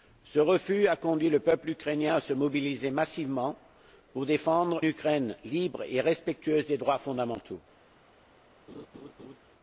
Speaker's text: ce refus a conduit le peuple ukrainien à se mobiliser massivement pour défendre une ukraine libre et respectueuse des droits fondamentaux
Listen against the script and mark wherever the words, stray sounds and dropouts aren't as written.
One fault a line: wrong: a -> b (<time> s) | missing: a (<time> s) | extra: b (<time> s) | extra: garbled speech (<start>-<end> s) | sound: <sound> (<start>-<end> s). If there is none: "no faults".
missing: une (4.8 s)
sound: laugh (8.7-9.4 s)